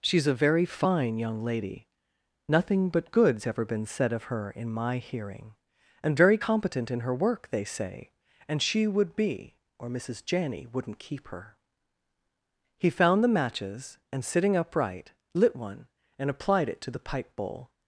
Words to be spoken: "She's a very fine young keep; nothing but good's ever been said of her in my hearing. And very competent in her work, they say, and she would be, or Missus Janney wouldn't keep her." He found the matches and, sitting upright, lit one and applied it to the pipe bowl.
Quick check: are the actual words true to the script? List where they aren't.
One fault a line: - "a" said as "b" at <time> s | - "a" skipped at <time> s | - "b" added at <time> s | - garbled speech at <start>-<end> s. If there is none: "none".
- "keep" said as "lady" at 1.4 s